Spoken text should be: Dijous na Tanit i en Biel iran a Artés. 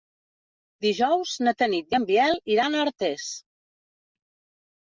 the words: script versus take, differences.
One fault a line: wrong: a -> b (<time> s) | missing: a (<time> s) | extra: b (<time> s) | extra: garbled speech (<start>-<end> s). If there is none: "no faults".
no faults